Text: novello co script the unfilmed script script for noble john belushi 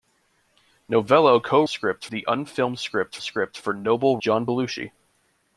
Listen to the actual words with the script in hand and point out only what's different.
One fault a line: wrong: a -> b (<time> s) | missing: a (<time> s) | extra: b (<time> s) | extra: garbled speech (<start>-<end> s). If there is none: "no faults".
no faults